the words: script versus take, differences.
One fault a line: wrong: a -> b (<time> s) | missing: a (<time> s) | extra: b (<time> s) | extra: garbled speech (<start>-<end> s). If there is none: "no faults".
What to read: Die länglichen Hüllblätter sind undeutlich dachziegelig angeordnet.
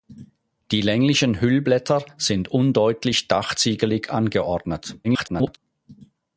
extra: garbled speech (5.0-5.6 s)